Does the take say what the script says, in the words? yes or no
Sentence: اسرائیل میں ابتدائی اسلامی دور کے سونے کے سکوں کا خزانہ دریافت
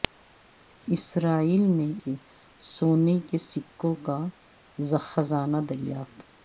no